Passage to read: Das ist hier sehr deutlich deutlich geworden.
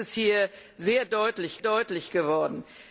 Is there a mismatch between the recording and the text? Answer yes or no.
no